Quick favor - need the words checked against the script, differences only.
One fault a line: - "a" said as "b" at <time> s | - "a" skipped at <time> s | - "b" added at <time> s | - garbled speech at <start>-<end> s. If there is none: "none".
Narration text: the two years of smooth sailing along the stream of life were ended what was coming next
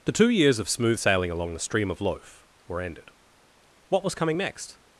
- "life" said as "loaf" at 2.0 s